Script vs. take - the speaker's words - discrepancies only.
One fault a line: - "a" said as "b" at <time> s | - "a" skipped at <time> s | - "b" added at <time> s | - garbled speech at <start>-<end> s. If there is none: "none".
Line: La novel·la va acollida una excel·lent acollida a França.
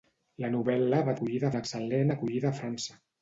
none